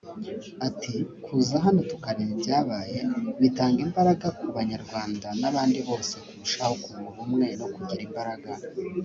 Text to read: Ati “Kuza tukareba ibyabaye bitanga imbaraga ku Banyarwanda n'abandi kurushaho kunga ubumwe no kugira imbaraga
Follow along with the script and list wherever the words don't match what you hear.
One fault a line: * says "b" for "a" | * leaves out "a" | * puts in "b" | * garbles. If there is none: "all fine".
* puts in "hano"
* puts in "bose"